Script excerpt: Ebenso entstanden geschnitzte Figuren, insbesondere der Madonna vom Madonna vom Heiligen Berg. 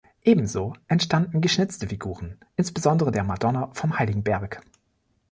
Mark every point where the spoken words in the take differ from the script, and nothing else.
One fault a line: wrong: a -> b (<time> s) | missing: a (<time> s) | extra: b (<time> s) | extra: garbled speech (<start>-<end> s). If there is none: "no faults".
missing: Madonna vom (4.0 s)